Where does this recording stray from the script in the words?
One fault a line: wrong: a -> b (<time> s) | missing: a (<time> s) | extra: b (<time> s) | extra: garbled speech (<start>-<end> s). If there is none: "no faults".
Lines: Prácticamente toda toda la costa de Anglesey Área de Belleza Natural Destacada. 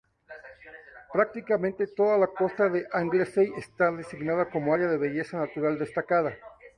missing: toda (2.2 s)
extra: está designada como (3.6 s)